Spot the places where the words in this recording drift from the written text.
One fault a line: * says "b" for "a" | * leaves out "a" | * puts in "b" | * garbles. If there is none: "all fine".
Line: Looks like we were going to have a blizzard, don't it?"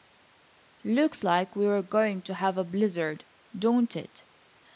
all fine